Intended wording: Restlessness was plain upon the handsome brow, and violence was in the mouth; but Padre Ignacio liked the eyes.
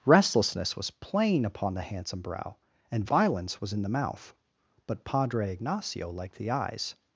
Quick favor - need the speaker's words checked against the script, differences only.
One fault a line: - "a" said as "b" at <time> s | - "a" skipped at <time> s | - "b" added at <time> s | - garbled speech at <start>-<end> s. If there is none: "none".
none